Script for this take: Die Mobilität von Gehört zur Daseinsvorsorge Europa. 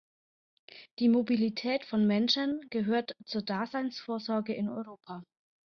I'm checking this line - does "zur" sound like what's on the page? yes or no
yes